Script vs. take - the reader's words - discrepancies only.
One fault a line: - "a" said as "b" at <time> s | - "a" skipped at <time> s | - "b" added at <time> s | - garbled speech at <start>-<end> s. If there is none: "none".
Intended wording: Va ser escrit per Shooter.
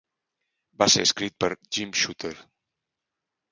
- "Jim" added at 1.8 s